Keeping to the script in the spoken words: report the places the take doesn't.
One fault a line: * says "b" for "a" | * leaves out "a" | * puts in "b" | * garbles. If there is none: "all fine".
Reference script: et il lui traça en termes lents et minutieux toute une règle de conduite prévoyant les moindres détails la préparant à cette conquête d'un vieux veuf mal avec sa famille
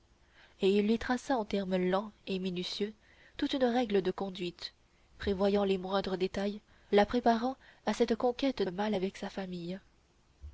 * leaves out "d'un vieux veuf"